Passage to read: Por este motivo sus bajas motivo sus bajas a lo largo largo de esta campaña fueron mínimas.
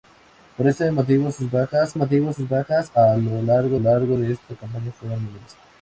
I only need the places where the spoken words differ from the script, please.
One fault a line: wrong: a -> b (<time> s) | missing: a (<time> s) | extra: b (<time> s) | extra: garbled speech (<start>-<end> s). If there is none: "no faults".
no faults